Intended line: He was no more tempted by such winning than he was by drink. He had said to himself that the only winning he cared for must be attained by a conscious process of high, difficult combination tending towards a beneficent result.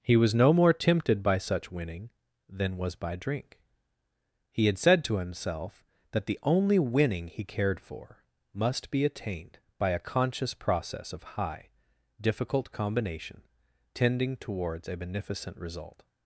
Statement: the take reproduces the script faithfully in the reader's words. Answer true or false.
false